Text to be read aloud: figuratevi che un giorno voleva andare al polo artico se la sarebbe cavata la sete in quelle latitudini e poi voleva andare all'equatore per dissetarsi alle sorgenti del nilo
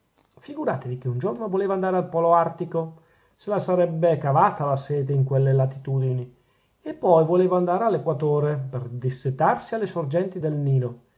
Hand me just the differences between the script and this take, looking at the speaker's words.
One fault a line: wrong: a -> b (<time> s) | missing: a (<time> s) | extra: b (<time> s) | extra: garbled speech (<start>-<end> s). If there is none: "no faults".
no faults